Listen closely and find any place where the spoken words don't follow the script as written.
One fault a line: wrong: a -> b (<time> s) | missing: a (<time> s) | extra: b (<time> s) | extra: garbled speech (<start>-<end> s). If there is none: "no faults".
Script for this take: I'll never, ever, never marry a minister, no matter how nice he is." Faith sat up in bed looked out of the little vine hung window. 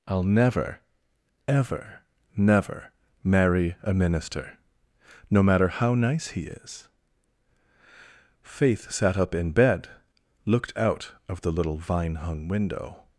no faults